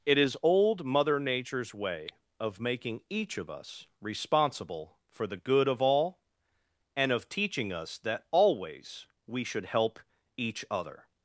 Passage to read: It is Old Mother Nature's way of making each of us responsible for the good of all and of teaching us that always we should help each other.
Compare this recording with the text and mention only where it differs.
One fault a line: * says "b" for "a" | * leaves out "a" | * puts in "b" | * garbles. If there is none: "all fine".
all fine